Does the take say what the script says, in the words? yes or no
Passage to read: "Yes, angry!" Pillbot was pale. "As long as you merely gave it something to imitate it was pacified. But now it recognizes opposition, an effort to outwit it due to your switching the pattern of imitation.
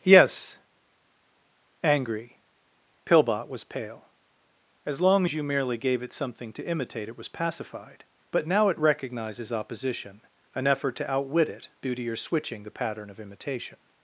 yes